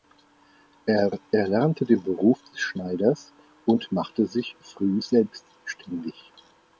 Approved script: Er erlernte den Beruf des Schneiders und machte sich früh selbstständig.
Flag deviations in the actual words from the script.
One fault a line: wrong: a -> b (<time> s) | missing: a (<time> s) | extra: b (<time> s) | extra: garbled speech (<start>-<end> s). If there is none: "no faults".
no faults